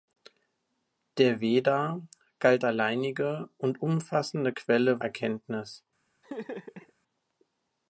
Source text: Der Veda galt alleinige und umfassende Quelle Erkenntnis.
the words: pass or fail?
pass